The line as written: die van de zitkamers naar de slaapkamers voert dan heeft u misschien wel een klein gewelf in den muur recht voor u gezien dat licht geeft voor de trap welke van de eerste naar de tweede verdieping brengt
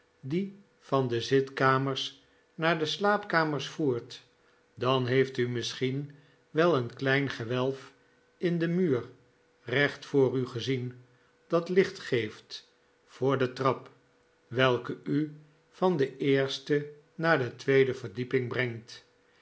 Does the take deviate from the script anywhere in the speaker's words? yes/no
yes